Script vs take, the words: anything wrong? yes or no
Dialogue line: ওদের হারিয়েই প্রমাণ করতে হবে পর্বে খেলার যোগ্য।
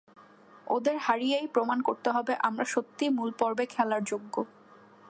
yes